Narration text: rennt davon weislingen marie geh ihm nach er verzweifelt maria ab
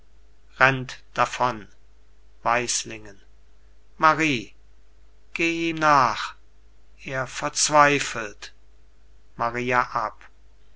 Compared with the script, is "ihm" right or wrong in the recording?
wrong